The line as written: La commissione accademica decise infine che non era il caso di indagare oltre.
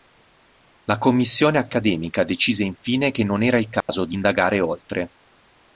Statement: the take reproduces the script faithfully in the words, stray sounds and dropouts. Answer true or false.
false